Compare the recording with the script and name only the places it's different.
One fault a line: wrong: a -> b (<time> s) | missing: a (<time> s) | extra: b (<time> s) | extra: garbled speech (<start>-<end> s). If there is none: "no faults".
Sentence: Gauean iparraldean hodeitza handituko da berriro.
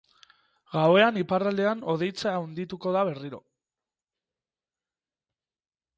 no faults